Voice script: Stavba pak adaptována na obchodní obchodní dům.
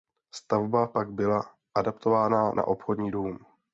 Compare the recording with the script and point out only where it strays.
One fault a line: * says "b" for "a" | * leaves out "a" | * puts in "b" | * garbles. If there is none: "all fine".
* puts in "byla"
* leaves out "obchodní"